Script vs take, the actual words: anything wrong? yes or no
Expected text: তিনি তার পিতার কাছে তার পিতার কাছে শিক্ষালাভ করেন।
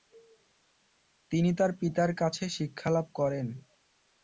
yes